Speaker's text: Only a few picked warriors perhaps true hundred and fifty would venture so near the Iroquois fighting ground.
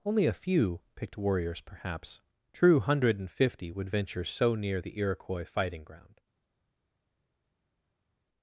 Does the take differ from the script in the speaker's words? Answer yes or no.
no